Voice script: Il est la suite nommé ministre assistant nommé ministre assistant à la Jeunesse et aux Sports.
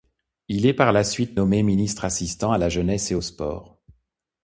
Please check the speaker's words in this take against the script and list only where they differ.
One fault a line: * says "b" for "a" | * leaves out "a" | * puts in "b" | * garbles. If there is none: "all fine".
* puts in "par"
* leaves out "nommé ministre assistant"